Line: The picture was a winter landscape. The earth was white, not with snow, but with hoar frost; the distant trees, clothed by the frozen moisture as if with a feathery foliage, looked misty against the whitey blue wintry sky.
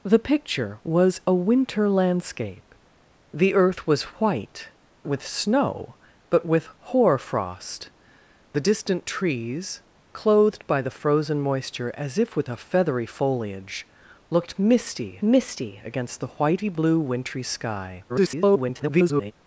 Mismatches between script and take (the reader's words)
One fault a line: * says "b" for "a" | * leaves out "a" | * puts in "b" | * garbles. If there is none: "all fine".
* leaves out "not"
* puts in "misty"
* garbles